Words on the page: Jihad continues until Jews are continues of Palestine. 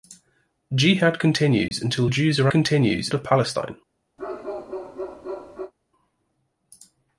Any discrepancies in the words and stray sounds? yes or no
yes